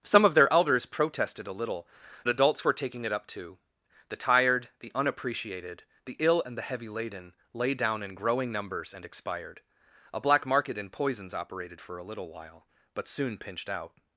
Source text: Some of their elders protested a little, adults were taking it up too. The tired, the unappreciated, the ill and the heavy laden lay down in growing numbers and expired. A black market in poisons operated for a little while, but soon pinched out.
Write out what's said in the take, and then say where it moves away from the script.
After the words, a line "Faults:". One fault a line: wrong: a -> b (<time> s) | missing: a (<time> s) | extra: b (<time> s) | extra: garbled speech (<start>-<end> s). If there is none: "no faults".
Some of their elders protested a little, adults were taking it up too. The tired, the unappreciated, the ill and the heavy laden lay down in growing numbers and expired. A black market in poisons operated for a little while, but soon pinched out.
Faults:
no faults